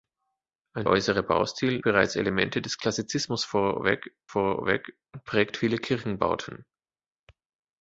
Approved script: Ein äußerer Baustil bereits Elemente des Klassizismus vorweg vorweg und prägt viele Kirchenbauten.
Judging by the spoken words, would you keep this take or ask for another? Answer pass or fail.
pass